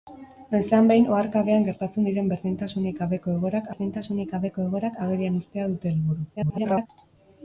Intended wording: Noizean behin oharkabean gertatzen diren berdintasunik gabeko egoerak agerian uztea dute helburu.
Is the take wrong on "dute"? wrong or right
right